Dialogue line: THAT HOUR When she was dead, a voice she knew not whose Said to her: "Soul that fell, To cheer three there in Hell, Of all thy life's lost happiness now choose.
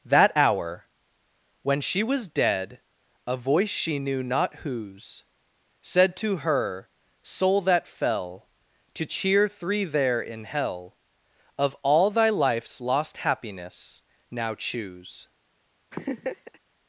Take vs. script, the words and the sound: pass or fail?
fail